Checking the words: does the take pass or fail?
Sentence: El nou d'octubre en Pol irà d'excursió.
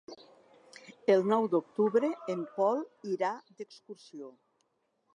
pass